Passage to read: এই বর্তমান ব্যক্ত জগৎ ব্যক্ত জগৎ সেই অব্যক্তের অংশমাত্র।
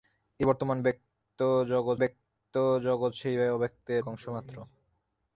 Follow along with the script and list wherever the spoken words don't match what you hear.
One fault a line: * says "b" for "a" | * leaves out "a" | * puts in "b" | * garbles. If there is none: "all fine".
all fine